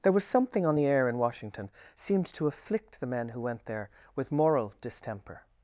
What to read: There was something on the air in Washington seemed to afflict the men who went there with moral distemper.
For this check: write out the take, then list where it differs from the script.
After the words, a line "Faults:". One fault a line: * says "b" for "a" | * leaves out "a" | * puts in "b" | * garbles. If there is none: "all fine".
There was something on the air in Washington seemed to afflict the men who went there with moral distemper.
Faults:
all fine